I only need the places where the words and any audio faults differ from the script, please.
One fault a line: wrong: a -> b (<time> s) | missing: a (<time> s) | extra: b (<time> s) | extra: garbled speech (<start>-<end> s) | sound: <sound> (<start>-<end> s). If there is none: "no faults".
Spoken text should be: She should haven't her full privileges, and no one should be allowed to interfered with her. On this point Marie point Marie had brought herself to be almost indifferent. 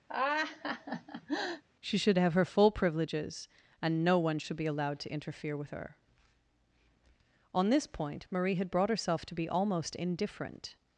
sound: laugh (0.1-1.6 s)
wrong: haven't -> have (2.2 s)
wrong: interfered -> interfere (5.1 s)
missing: point Marie (8.6 s)